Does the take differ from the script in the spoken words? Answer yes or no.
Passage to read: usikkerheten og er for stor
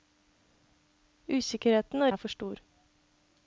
no